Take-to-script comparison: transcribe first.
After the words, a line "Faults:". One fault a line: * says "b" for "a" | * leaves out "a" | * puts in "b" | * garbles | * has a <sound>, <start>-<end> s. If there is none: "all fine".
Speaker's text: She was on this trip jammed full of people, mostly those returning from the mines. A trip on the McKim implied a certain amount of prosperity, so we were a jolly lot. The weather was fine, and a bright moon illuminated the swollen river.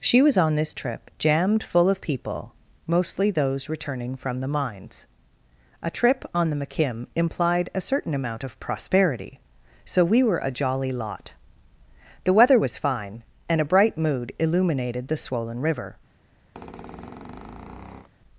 She was on this trip jammed full of people, mostly those returning from the mines. A trip on the McKim implied a certain amount of prosperity, so we were a jolly lot. The weather was fine, and a bright mood illuminated the swollen river.
Faults:
* says "mood" for "moon"
* has a squeak, 16.5-18.1 s